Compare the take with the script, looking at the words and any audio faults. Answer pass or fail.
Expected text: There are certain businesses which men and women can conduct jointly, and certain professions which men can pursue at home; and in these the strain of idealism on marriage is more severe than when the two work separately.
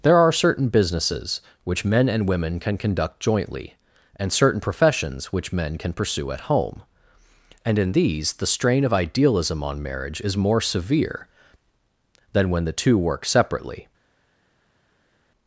pass